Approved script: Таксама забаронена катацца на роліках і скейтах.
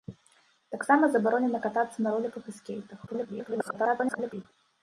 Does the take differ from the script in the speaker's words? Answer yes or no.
yes